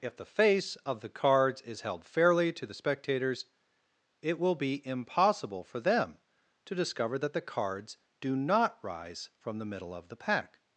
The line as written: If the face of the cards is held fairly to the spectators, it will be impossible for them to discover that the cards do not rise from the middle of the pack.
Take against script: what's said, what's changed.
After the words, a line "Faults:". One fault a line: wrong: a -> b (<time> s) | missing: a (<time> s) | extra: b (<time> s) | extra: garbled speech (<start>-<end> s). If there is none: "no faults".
If the face of the cards is held fairly to the spectators, it will be impossible for them to discover that the cards do not rise from the middle of the pack.
Faults:
no faults